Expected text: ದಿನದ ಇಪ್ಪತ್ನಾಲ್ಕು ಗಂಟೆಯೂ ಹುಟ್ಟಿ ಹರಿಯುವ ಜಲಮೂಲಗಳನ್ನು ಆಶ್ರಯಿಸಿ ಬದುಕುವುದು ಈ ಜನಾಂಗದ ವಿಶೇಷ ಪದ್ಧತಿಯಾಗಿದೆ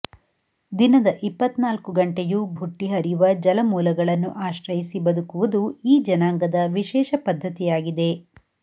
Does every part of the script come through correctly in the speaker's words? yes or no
yes